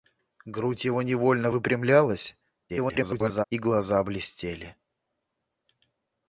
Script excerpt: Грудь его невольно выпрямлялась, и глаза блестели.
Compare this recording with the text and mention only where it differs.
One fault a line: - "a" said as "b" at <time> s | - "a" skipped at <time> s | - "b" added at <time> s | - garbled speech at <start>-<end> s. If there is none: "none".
- garbled speech at 2.7-3.4 s